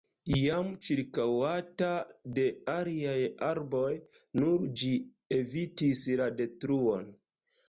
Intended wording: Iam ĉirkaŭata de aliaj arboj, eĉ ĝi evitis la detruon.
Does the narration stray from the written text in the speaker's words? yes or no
yes